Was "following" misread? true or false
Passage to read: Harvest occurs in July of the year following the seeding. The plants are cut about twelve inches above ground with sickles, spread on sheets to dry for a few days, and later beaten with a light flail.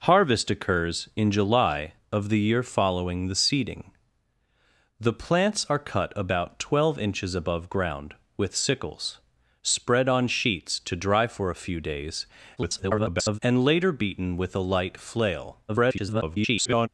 false